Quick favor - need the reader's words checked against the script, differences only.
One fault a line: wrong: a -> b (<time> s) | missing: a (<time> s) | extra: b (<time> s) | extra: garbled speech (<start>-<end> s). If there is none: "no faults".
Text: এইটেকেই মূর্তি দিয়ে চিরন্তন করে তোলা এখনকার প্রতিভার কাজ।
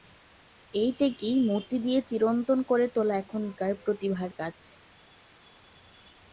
no faults